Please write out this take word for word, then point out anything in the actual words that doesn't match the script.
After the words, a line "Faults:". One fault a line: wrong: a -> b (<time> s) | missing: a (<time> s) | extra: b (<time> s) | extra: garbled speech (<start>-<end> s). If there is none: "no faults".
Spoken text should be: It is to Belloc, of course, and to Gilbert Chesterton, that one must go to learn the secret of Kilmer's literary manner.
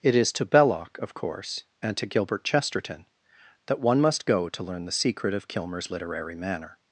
It is to Belloc, of course, and to Gilbert Chesterton, that one must go to learn the secret of Kilmer's literary manner.
Faults:
no faults